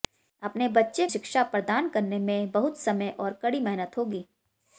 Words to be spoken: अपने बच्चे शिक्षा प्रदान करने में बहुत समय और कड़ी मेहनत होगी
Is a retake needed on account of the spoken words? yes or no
no